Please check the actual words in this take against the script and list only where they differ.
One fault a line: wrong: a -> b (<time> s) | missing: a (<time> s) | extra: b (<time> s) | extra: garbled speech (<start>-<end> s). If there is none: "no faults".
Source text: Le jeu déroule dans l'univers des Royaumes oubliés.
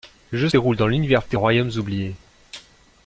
no faults